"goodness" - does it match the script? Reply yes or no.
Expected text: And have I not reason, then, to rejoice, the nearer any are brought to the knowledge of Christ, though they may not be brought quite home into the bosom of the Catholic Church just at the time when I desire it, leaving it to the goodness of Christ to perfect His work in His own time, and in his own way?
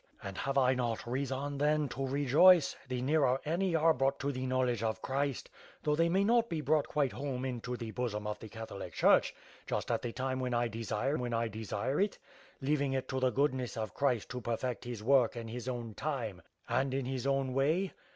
yes